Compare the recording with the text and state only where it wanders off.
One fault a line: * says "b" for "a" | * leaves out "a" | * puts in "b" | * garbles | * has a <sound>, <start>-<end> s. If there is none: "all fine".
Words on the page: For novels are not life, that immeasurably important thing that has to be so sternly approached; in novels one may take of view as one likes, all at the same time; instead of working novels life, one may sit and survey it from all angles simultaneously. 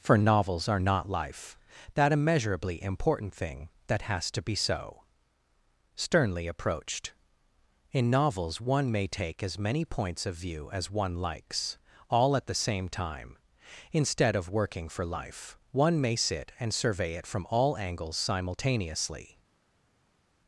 * puts in "as many points"
* says "for" for "novels"